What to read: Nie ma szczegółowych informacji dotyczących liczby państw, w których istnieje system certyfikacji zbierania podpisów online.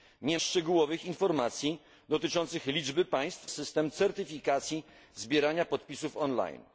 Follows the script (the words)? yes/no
no